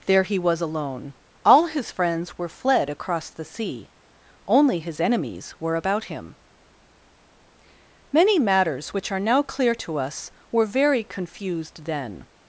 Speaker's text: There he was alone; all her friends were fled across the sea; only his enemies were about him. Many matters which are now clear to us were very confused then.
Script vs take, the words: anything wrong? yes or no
yes